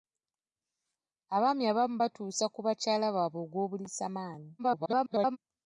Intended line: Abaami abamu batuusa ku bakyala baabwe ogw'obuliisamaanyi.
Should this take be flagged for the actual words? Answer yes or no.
yes